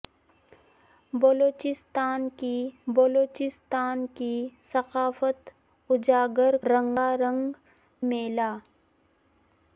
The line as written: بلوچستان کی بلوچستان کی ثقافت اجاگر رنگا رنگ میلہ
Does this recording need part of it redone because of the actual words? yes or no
no